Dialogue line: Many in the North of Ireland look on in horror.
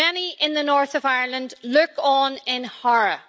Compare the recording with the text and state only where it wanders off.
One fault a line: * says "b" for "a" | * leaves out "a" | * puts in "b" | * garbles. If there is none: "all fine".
all fine